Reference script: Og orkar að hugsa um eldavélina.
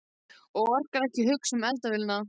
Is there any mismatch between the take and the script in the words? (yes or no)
yes